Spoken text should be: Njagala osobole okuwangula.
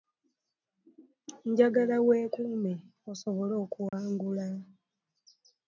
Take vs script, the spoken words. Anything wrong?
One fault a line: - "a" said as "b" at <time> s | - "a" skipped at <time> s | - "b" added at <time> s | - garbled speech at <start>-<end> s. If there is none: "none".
- "weekuume" added at 2.1 s